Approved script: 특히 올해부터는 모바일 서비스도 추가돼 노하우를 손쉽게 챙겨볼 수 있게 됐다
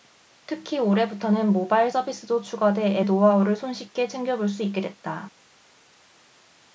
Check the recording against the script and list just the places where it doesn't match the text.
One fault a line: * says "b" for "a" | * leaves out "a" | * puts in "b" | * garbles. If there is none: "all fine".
all fine